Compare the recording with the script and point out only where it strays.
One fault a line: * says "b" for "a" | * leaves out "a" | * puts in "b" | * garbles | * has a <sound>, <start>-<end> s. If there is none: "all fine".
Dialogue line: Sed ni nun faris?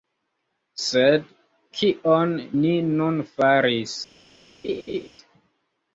* puts in "kion"
* has a laugh, 4.6-5.1 s